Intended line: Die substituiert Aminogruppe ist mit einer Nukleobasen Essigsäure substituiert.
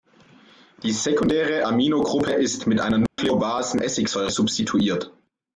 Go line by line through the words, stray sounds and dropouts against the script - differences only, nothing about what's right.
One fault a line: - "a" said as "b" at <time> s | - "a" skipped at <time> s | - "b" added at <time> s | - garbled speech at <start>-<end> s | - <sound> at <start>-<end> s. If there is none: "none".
- "substituiert" said as "sekundäre" at 0.9 s
- dropout at 3.1-3.2 s